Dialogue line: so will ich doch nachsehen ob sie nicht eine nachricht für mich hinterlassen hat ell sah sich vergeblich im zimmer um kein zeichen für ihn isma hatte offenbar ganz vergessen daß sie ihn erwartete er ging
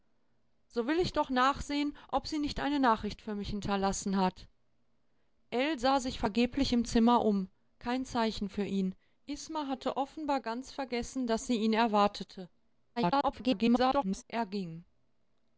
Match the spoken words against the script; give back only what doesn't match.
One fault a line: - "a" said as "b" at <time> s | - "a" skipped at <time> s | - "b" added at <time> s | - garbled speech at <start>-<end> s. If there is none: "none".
- garbled speech at 13.0-14.2 s